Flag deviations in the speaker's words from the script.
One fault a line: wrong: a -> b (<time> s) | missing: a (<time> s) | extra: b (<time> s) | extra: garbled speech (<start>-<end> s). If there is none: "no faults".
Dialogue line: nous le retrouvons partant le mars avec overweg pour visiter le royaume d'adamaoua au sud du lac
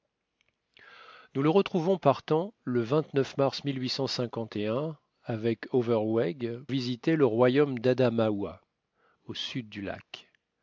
missing: pour (6.6 s)